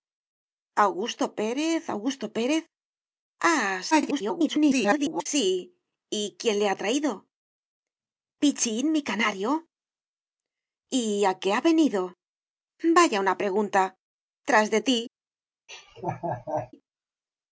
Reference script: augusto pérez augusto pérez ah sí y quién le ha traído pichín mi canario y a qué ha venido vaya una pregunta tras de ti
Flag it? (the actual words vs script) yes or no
yes